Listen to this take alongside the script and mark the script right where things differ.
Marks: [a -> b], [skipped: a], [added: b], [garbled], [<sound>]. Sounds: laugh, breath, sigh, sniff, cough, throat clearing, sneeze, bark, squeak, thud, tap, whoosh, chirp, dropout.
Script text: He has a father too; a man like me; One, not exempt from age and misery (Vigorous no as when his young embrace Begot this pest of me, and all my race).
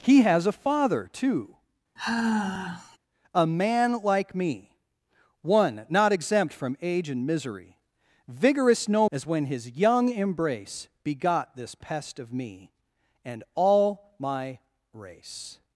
He has a father too; [sigh] a man like me; One, not exempt from age and misery (Vigorous no as when his young embrace Begot this pest of me, and all my race).